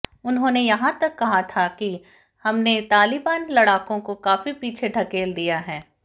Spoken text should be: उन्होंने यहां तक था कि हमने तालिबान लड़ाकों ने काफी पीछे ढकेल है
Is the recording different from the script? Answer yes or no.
yes